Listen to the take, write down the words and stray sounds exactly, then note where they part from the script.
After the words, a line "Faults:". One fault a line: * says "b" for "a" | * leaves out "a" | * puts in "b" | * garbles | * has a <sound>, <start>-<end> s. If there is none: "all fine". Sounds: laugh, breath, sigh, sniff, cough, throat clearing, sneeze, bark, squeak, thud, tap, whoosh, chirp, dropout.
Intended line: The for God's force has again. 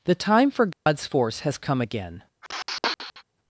The time for God's force has come again.
Faults:
* puts in "time"
* has a dropout, 0.7-0.9 s
* puts in "come"
* has a sniff, 2.4-3.2 s